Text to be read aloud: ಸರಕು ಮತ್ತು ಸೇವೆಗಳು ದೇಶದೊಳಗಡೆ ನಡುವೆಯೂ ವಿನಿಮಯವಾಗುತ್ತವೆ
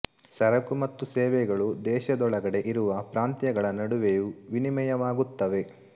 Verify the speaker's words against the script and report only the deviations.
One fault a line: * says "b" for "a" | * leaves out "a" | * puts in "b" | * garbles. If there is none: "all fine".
* puts in "ಇರುವ ಪ್ರಾಂತ್ಯಗಳ"